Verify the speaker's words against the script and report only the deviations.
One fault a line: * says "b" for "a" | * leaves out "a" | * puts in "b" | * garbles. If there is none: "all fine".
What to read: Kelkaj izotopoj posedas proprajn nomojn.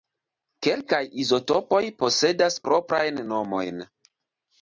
all fine